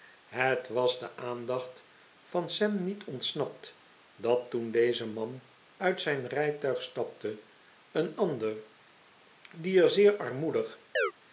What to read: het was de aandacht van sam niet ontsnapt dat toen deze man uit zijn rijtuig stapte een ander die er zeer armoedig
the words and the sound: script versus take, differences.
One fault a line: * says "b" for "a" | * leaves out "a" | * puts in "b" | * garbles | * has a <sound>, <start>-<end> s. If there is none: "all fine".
* has a chirp, 11.0-11.1 s